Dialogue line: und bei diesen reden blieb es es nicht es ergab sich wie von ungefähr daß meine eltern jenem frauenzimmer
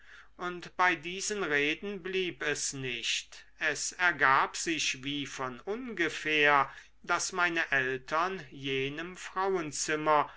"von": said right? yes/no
yes